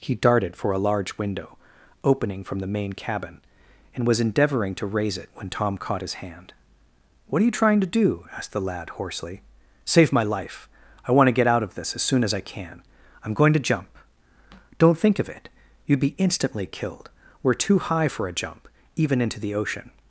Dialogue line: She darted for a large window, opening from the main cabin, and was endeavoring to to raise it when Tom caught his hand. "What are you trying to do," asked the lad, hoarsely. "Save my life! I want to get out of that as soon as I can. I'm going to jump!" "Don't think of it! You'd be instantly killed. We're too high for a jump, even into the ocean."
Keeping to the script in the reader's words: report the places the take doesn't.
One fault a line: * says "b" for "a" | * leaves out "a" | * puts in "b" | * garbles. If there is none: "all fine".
* says "He" for "She"
* leaves out "to"
* says "this" for "that"